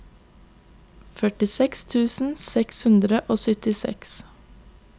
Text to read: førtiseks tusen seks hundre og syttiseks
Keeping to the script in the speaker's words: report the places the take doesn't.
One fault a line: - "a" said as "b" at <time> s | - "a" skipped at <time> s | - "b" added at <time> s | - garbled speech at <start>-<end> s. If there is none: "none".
none